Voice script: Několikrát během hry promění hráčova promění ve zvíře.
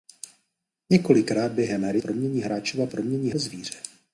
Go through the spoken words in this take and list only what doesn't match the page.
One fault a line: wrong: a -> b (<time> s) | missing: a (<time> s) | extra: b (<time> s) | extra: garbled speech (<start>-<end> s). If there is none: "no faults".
no faults